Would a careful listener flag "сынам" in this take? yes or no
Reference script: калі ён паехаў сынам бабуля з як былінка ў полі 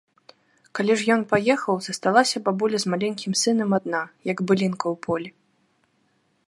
yes